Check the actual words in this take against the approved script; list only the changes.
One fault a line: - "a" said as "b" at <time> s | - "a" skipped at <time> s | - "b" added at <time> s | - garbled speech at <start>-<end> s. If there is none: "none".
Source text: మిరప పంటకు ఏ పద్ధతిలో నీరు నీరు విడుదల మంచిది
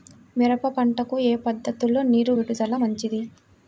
- "నీరు" skipped at 2.3 s